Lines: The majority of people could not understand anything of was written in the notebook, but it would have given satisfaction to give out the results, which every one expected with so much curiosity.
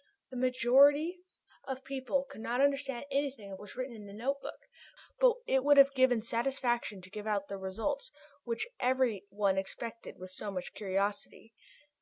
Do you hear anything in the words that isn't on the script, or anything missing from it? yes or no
no